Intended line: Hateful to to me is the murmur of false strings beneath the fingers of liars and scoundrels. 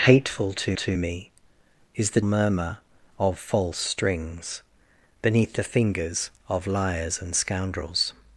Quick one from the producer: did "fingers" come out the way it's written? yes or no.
yes